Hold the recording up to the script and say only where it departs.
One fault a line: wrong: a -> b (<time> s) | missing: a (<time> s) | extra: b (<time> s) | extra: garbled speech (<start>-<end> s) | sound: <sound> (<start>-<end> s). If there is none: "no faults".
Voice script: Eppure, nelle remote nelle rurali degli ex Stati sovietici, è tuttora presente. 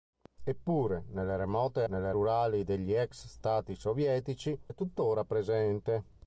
no faults